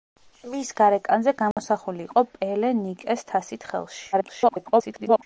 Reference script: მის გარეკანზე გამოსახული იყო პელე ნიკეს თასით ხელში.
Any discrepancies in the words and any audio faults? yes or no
yes